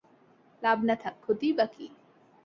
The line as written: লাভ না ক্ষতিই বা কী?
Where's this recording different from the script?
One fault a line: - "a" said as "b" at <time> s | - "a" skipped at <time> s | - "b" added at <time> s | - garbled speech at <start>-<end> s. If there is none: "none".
- "থাক" added at 0.9 s